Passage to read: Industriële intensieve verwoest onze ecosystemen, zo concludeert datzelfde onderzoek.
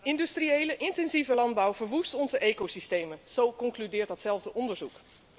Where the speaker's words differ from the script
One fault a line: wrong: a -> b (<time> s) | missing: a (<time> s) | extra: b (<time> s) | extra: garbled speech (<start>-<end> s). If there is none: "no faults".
extra: landbouw (1.3 s)